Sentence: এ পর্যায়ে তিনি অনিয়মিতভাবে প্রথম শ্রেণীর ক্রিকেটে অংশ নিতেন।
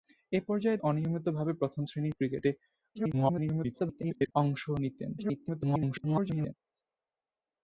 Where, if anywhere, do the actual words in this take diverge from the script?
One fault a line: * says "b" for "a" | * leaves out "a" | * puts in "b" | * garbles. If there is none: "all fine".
* leaves out "তিনি"
* garbles
* garbles